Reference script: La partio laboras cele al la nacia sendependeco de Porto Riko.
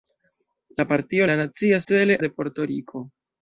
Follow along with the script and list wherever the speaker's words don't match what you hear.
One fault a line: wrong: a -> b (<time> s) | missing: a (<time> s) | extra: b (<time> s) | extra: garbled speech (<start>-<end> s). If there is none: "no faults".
missing: laboras cele al (1.3 s)
wrong: sendependeco -> cele (1.9 s)